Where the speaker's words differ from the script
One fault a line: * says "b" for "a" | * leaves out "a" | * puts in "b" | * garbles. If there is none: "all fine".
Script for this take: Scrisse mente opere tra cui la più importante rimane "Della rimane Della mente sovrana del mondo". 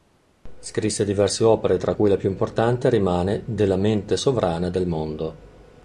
* says "diverse" for "mente"
* leaves out "rimane Della"